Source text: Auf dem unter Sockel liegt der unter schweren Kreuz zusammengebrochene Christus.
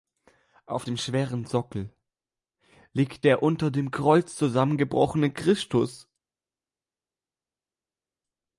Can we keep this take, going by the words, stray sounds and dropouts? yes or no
no